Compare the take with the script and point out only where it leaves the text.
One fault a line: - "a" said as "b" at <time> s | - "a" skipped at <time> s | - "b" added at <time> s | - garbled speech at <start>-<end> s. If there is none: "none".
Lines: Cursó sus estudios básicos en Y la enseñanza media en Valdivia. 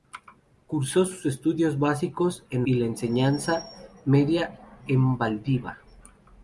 none